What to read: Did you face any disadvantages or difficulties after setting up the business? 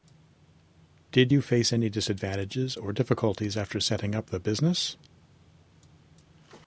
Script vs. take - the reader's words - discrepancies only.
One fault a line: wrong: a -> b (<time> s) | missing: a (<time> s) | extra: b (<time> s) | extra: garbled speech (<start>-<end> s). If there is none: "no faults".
no faults